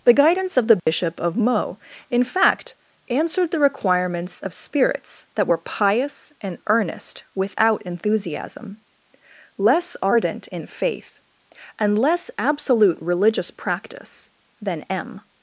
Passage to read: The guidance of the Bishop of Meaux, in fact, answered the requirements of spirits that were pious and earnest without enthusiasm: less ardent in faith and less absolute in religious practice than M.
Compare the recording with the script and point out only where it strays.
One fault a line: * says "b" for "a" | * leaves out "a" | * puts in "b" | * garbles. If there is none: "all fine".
* leaves out "in"